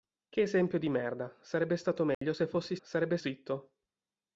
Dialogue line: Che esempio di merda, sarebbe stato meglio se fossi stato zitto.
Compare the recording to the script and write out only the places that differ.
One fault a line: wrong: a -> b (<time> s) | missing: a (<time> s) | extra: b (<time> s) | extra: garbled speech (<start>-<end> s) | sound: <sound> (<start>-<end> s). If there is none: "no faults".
sound: dropout (2.1-2.2 s)
wrong: stato -> sarebbe (2.8 s)